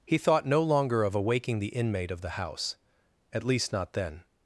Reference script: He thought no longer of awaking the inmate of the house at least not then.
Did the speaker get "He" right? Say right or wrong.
right